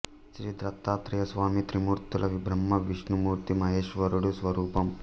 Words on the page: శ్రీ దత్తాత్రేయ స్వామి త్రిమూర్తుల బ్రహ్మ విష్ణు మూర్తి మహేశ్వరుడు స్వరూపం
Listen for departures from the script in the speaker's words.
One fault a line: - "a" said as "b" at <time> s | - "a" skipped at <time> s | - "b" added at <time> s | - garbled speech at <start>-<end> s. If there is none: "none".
none